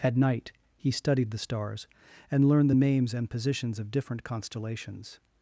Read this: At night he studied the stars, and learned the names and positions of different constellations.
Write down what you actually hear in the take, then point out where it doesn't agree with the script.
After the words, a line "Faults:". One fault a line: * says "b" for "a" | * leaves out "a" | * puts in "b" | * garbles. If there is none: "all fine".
At night he studied the stars, and learned the names and positions of different constellations.
Faults:
all fine